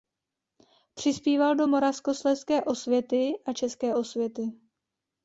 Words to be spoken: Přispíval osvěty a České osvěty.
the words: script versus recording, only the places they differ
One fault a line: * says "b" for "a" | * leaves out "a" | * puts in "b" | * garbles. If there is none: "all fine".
* puts in "do Moravskoslezské"